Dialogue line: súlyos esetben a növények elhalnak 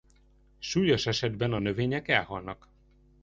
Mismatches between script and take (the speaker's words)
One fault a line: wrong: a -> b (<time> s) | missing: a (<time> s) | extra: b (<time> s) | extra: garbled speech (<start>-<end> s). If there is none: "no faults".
no faults